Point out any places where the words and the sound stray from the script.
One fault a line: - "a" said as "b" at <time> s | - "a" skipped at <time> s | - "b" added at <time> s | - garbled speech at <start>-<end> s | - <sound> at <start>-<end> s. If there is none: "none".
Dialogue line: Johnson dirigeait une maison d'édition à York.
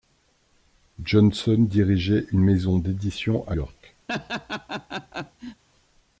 - laugh at 4.1-5.6 s